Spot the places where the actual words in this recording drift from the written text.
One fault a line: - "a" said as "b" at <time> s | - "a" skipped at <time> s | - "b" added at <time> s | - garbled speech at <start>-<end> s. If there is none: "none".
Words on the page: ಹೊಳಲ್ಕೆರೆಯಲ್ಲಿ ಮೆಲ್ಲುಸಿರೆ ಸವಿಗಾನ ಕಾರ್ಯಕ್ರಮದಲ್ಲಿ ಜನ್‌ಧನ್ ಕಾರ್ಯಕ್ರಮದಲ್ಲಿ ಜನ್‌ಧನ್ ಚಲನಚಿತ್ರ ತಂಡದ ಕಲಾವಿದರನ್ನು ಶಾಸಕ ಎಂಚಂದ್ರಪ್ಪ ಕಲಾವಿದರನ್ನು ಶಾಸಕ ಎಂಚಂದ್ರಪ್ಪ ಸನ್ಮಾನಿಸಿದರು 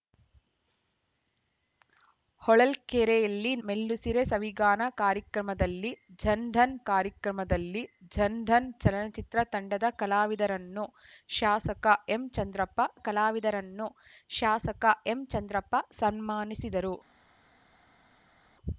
none